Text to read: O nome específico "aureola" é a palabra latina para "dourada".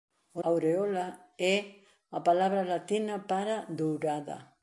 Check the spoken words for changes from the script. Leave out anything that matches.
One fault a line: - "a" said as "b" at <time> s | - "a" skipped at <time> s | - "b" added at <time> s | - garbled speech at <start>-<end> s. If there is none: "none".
- "nome específico" skipped at 0.4 s